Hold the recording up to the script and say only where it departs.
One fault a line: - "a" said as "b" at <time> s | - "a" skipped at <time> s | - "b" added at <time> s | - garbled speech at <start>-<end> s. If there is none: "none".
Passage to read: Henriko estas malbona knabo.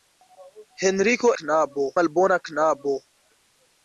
- "estas" said as "knabo" at 1.4 s